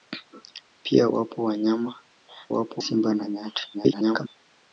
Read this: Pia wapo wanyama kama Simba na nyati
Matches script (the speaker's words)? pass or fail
fail